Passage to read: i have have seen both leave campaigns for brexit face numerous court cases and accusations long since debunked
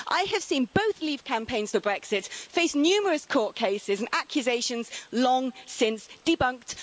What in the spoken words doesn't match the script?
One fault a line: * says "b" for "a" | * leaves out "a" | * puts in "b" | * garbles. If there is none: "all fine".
* leaves out "have"